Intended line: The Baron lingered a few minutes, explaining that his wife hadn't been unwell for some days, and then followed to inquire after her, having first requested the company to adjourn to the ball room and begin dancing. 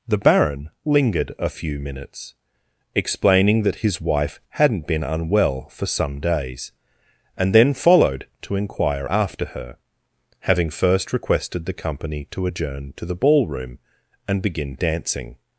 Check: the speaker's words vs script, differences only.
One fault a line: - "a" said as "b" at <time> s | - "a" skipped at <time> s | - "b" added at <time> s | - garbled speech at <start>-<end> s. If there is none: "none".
none